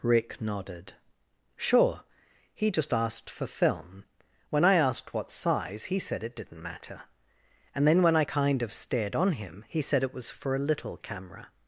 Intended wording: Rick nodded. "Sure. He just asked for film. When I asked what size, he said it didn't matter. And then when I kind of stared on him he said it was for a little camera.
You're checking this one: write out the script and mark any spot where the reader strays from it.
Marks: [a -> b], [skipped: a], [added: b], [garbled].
Rick nodded. "Sure. He just asked for film. When I asked what size, he said it didn't matter. And then when I kind of stared on him he said it was for a little camera.